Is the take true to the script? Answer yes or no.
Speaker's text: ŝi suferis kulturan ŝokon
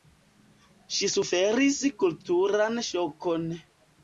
yes